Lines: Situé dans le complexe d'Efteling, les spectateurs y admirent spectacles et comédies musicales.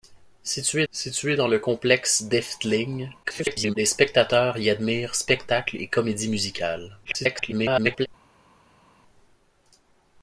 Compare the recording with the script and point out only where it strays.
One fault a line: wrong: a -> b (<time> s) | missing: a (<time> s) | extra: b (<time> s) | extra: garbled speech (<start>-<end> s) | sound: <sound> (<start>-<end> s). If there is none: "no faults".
extra: situé (0.9 s)
extra: garbled speech (3.2-3.8 s)
extra: garbled speech (7.0-8.1 s)